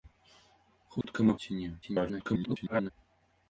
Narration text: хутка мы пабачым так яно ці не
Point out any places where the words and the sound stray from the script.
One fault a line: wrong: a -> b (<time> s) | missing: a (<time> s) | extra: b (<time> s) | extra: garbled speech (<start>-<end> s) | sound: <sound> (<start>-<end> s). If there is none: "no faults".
sound: dropout (1.0-1.0 s)
missing: пабачым так яно (1.3 s)
extra: garbled speech (1.8-2.9 s)